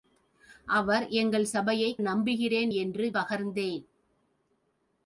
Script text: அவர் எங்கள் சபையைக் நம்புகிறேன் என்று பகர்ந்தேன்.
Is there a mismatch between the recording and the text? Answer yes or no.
no